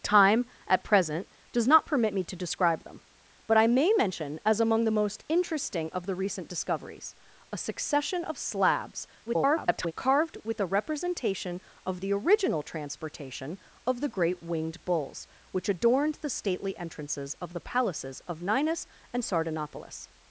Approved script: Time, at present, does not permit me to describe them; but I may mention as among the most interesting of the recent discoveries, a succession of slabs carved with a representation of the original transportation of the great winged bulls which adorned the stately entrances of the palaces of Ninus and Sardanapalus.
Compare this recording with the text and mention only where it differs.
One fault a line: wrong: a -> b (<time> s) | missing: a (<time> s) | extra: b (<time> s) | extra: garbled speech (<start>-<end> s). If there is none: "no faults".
extra: garbled speech (9.2-9.9 s)